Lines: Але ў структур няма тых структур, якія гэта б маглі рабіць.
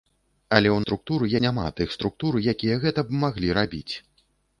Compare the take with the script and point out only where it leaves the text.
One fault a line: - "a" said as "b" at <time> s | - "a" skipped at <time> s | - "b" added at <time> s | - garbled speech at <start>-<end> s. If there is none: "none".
none